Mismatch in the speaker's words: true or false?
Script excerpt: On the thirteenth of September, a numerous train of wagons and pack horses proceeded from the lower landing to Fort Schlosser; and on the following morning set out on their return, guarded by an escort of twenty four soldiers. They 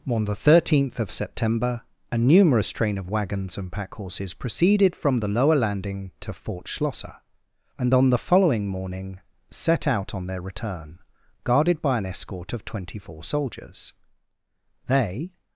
false